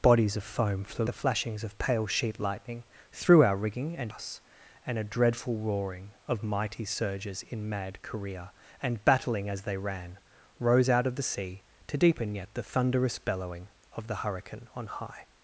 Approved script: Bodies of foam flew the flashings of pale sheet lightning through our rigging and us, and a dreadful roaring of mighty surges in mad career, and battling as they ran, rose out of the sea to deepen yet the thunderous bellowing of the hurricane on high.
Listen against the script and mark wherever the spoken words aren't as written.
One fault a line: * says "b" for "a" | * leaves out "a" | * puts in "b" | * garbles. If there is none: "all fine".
all fine